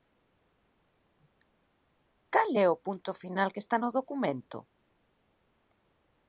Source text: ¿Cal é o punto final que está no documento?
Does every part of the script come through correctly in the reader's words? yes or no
yes